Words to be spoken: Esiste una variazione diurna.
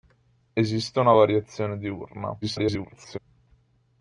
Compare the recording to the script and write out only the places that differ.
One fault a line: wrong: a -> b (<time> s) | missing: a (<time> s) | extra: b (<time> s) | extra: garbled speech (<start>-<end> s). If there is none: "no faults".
extra: garbled speech (2.4-3.2 s)